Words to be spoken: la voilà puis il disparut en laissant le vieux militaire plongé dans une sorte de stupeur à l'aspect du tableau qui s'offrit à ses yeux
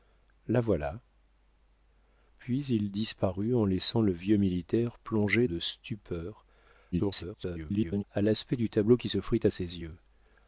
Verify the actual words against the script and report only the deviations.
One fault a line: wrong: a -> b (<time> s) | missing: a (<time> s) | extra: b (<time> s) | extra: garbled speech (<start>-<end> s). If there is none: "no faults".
missing: dans une sorte (5.5 s)
extra: garbled speech (6.9-8.0 s)